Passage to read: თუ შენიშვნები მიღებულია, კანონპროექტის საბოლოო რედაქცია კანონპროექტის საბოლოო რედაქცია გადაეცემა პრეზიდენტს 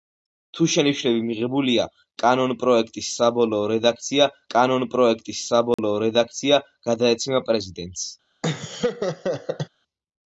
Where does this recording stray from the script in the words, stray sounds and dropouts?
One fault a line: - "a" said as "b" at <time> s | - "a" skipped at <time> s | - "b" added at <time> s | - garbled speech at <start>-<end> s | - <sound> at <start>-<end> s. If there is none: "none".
- dropout at 5.7-5.8 s
- laugh at 8.4-9.7 s